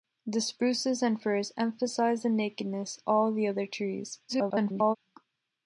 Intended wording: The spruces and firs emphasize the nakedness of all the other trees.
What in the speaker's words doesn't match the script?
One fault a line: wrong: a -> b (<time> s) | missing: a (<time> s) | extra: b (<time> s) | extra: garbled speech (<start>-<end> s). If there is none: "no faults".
missing: of (3.0 s)
extra: garbled speech (4.3-5.0 s)